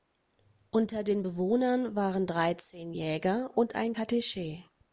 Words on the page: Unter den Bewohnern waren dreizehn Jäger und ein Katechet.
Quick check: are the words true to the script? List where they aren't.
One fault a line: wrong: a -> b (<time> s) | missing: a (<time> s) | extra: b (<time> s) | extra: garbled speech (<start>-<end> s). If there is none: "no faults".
no faults